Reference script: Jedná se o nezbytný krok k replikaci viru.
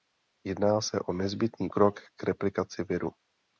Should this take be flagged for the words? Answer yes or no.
no